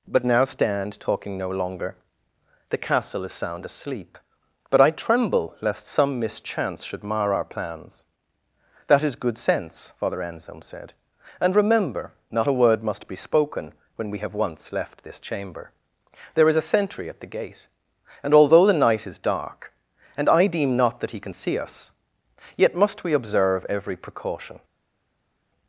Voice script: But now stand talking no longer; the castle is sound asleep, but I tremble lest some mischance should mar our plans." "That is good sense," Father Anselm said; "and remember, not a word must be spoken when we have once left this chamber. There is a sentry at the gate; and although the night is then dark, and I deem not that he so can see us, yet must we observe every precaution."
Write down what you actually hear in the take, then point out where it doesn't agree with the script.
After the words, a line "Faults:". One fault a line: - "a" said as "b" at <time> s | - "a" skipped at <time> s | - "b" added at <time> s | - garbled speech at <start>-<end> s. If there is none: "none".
But now stand talking no longer; the castle is sound asleep, but I tremble lest some mischance should mar our plans." "That is good sense," Father Anselm said; "and remember, not a word must be spoken when we have once left this chamber. There is a sentry at the gate; and although the night is dark, and I deem not that he can see us, yet must we observe every precaution."
Faults:
- "then" skipped at 19.2 s
- "so" skipped at 21.2 s